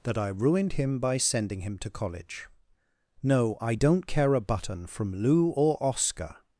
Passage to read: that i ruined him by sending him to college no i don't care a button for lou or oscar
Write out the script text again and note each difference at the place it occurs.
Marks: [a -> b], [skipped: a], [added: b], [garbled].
that i ruined him by sending him to college no i don't care a button [for -> from] lou or oscar